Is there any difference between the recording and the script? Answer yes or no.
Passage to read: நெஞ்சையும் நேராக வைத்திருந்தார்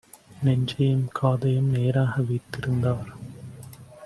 yes